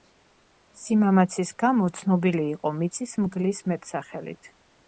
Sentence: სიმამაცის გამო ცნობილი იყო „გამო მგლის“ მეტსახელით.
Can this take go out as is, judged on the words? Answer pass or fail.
fail